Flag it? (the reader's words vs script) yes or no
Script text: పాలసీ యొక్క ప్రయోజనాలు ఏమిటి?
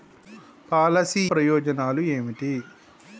yes